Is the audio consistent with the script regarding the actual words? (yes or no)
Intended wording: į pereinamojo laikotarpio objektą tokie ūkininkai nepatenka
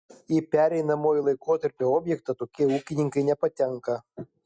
yes